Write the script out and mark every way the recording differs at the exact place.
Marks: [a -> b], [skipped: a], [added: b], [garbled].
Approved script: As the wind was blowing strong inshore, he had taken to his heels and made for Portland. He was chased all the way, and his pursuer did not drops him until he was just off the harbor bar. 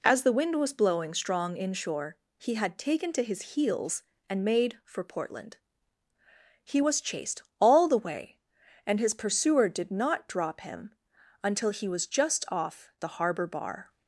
As the wind was blowing strong inshore, he had taken to his heels and made for Portland. He was chased all the way, and his pursuer did not [drops -> drop] him until he was just off the harbor bar.